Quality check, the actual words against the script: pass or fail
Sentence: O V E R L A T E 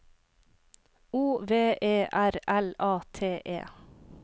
pass